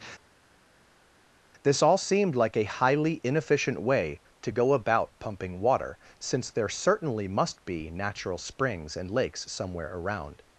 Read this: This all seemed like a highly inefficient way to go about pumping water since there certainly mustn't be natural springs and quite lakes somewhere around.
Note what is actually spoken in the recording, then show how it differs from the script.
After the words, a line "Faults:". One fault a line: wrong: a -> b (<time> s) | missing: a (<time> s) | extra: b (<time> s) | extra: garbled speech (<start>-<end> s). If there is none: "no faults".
This all seemed like a highly inefficient way to go about pumping water since there certainly must be natural springs and lakes somewhere around.
Faults:
wrong: mustn't -> must (7.3 s)
missing: quite (9.1 s)